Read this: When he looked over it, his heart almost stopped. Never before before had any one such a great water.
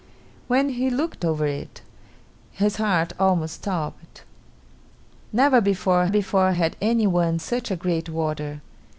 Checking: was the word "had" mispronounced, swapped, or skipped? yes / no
no